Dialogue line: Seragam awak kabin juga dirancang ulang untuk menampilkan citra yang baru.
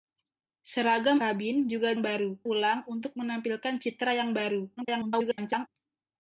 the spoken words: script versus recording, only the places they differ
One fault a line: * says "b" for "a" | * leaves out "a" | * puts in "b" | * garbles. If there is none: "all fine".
* leaves out "awak"
* says "baru" for "dirancang"
* garbles